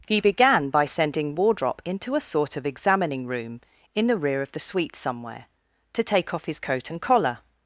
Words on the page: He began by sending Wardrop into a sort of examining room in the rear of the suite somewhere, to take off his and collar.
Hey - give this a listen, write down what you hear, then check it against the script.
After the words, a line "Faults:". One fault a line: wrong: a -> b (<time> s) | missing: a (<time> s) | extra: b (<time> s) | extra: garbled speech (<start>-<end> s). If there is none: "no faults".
He began by sending Wardrop into a sort of examining room in the rear of the suite somewhere, to take off his coat and collar.
Faults:
extra: coat (6.6 s)